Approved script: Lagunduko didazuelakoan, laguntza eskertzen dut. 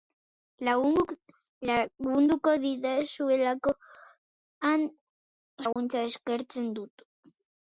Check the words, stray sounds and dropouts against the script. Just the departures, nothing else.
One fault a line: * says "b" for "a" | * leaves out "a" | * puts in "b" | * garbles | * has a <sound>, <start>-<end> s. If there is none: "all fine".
* has a dropout, 5.7-5.8 s